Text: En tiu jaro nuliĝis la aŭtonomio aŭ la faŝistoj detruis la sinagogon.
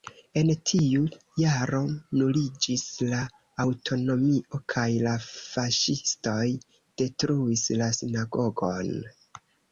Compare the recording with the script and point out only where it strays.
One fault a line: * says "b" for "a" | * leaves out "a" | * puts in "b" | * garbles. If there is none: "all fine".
* says "kaj" for "aŭ"